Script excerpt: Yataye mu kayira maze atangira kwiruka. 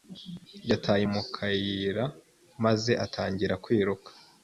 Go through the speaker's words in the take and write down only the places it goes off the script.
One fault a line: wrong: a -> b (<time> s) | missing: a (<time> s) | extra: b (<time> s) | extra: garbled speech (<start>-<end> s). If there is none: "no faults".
no faults